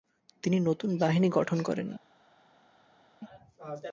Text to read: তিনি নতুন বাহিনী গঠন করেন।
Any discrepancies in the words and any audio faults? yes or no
no